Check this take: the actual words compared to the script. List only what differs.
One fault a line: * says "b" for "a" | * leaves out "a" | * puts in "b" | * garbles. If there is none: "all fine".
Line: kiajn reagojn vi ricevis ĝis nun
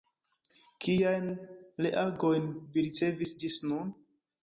all fine